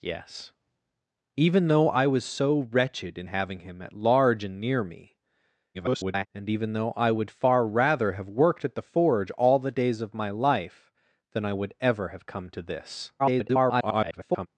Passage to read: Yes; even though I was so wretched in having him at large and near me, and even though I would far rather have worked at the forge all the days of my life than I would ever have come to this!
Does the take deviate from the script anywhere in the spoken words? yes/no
yes